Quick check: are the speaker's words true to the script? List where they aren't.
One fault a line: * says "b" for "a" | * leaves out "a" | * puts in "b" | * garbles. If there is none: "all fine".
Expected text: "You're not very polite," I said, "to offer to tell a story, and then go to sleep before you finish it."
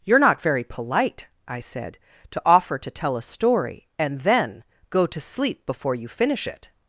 all fine